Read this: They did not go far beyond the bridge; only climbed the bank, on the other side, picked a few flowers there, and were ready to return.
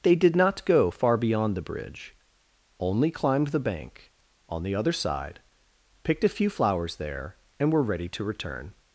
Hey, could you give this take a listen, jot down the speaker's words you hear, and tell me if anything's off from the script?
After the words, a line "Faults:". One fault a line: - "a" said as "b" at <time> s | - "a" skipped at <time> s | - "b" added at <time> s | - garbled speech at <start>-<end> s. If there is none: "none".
They did not go far beyond the bridge; only climbed the bank, on the other side, picked a few flowers there, and were ready to return.
Faults:
none